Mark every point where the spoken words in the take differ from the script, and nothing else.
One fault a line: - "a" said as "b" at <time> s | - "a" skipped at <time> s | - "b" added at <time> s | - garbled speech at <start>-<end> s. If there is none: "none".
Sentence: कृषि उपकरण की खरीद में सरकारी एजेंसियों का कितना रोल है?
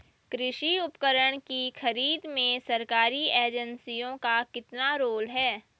none